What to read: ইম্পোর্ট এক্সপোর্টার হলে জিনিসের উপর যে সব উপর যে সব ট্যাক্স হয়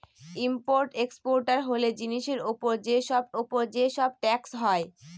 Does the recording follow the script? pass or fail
pass